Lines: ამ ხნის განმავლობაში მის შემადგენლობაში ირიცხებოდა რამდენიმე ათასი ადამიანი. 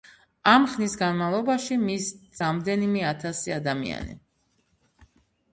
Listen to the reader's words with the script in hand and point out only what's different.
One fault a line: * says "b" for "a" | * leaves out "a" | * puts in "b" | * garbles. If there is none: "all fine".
* leaves out "შემადგენლობაში ირიცხებოდა"